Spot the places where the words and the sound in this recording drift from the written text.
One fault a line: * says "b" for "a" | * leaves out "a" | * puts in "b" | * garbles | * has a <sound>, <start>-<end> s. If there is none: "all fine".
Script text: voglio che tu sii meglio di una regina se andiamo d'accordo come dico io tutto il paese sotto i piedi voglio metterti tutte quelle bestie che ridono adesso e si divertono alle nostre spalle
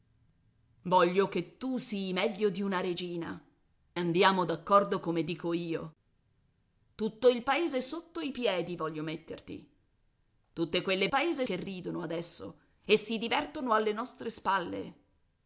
* leaves out "se"
* says "paese" for "bestie"